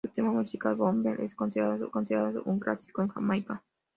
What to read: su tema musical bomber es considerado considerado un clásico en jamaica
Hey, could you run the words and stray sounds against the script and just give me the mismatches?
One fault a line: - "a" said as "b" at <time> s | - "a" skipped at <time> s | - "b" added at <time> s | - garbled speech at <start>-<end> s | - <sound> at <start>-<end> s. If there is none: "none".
none